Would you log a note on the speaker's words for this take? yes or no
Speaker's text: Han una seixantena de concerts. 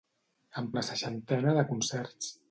no